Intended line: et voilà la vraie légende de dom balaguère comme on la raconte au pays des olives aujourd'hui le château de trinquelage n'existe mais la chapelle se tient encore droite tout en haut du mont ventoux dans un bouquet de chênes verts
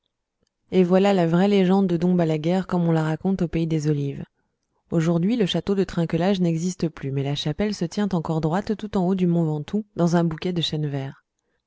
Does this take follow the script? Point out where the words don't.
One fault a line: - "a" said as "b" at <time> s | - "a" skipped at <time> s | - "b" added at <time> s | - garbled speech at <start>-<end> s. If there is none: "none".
- "plus" added at 6.9 s